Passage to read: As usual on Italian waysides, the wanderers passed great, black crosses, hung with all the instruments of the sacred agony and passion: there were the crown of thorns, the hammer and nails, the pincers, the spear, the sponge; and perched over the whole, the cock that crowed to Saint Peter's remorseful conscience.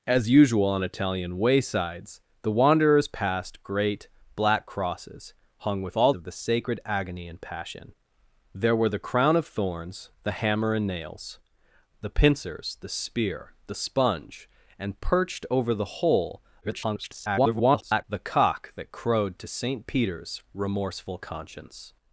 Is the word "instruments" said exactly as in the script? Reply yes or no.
no